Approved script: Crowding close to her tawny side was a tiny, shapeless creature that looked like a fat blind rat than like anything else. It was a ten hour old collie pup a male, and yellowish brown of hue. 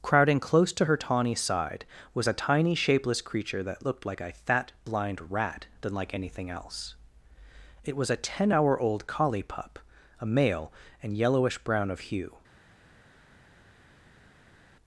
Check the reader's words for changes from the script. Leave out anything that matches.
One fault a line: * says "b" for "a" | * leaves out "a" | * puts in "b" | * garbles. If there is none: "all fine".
all fine